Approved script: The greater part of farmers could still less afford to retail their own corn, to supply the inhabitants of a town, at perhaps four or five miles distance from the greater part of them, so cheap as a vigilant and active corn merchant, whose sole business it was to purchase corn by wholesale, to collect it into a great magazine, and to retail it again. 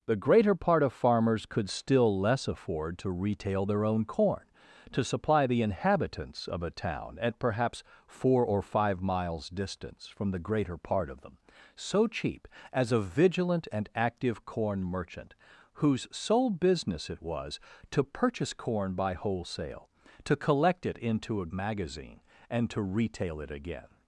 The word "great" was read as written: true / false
false